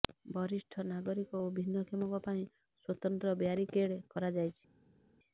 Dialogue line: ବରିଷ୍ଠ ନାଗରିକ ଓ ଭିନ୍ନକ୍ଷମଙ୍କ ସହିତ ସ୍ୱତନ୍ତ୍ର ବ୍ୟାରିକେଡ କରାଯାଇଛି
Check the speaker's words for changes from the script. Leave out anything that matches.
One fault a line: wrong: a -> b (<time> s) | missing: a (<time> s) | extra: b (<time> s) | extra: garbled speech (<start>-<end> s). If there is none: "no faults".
wrong: ସହିତ -> ପାଇଁ (2.2 s)